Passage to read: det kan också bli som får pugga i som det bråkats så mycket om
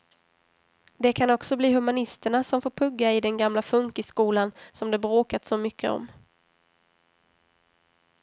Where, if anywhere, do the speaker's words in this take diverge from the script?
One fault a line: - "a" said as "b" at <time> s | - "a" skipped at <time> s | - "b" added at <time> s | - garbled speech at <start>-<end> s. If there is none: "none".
- "humanisterna" added at 1.7 s
- "den gamla funkisskolan" added at 3.2 s